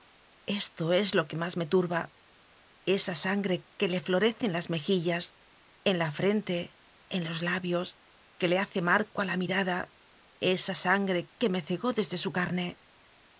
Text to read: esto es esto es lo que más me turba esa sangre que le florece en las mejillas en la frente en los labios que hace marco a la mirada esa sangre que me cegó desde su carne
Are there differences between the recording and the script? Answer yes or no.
yes